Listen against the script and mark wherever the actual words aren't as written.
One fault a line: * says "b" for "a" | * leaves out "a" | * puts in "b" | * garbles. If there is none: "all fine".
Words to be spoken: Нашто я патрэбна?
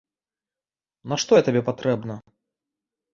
* puts in "табе"